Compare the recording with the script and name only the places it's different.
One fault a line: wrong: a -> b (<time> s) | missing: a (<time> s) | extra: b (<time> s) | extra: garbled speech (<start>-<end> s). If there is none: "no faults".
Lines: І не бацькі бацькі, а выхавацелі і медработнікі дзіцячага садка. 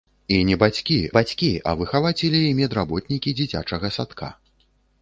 no faults